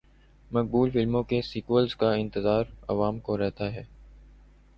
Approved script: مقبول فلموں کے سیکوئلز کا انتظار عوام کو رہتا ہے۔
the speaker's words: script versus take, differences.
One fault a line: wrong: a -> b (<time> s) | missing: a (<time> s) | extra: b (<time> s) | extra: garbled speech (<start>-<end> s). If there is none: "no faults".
no faults